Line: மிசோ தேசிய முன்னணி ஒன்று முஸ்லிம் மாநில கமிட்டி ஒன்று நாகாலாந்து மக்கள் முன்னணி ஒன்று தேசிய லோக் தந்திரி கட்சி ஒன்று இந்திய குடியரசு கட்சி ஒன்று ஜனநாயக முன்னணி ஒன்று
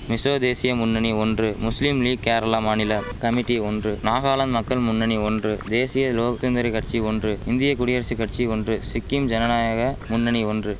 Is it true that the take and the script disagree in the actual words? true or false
true